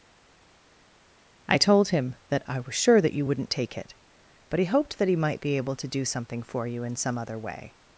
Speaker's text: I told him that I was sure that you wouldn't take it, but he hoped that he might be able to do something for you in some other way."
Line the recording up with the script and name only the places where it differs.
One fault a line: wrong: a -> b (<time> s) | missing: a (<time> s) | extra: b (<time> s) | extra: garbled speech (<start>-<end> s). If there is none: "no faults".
no faults